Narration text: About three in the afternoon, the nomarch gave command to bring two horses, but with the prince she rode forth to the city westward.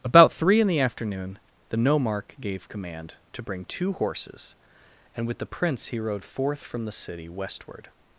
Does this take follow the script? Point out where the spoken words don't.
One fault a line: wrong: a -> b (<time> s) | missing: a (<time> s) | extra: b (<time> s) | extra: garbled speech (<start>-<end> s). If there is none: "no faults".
wrong: but -> and (5.2 s)
wrong: she -> he (5.9 s)
wrong: to -> from (6.6 s)